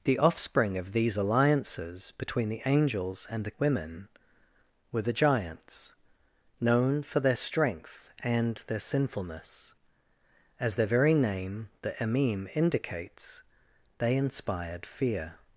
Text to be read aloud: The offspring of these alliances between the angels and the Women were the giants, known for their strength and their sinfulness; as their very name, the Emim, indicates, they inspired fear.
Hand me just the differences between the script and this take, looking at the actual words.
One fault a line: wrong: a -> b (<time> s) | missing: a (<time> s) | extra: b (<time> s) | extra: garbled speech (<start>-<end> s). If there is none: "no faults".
no faults